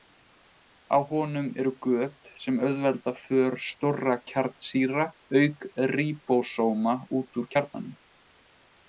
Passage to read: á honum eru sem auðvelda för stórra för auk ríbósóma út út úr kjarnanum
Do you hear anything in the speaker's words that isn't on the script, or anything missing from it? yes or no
yes